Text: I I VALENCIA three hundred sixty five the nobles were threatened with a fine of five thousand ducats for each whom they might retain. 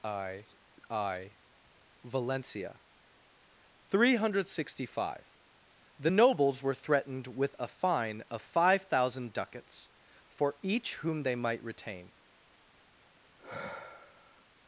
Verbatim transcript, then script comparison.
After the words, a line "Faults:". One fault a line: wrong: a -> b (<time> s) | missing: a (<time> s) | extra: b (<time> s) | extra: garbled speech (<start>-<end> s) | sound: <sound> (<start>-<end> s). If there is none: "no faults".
I I VALENCIA three hundred sixty five the nobles were threatened with a fine of five thousand ducats for each whom they might retain.
Faults:
sound: sigh (13.4-14.4 s)